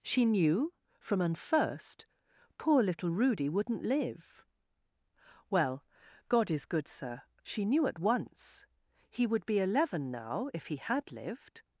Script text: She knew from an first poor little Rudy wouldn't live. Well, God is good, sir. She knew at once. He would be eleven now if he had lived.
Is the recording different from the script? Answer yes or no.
no